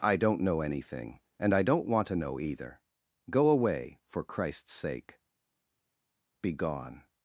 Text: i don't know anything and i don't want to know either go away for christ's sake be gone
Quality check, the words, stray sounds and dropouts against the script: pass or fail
pass